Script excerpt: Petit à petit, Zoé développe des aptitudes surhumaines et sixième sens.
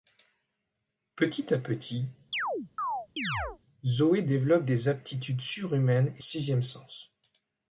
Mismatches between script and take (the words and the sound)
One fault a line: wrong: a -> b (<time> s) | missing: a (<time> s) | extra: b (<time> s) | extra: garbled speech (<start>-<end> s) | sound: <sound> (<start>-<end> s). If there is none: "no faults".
sound: chirp (2.3-3.6 s)